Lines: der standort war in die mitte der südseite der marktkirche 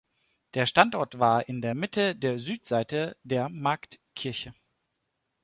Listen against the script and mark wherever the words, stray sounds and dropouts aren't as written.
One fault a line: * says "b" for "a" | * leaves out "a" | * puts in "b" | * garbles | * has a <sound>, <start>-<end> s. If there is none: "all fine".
* says "der" for "die"